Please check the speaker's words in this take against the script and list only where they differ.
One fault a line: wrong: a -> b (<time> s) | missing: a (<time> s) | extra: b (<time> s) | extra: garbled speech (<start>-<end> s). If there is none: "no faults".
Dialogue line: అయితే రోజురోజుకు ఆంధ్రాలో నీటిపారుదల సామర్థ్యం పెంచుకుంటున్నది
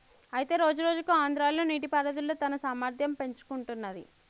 extra: తన (2.4 s)